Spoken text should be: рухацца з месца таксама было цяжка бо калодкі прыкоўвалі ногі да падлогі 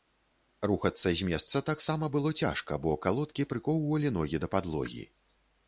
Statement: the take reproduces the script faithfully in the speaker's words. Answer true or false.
true